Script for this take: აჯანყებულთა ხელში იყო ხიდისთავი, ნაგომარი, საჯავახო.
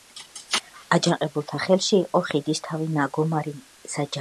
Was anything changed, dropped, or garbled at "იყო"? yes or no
no